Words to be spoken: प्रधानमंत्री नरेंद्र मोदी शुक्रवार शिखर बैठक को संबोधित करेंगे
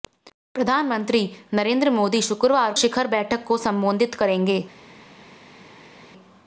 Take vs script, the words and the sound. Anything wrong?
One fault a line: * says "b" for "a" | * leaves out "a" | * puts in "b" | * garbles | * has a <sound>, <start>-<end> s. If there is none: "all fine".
all fine